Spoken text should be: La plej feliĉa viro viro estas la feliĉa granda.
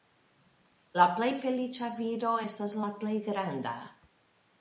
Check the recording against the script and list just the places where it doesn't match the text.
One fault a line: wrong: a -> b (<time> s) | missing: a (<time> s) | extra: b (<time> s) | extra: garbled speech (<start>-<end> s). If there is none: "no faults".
missing: viro (2.3 s)
wrong: feliĉa -> plej (3.0 s)